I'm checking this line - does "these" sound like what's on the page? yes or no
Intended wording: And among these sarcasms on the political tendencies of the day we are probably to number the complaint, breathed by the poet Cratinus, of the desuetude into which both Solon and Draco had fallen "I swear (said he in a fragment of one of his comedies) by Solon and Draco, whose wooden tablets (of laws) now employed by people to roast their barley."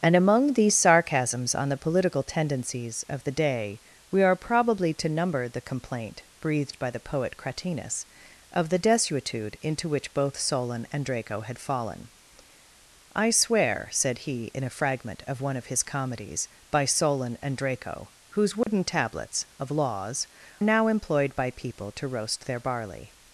yes